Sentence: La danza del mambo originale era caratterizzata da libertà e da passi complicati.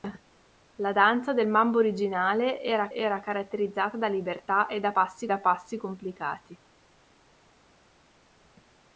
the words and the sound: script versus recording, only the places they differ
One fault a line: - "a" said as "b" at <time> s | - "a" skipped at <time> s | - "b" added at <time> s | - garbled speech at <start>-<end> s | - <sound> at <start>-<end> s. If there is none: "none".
- "era" added at 2.9 s
- "da passi" added at 5.3 s